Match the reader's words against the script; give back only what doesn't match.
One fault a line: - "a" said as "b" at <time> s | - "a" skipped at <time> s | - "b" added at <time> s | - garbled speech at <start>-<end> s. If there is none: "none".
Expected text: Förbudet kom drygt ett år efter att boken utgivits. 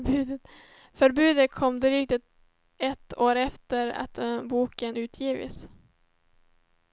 none